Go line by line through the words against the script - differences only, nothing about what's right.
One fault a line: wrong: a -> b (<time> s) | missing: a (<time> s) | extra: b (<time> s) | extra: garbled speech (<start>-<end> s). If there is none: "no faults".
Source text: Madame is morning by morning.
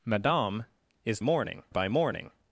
no faults